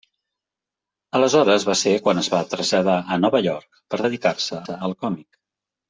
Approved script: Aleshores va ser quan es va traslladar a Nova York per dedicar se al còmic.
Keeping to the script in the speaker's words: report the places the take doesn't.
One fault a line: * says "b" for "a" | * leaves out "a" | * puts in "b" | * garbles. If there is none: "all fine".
* puts in "se"